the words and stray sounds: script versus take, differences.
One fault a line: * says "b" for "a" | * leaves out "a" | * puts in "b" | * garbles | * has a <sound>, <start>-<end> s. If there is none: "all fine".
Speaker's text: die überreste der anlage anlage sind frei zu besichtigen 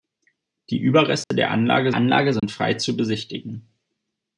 * has a dropout, 1.2-1.3 s
* has a dropout, 2.4-2.4 s